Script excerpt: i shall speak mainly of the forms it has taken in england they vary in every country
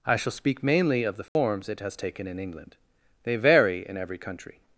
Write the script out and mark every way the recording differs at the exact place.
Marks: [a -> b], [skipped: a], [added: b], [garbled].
i shall speak mainly of the forms it has taken in england they vary in every country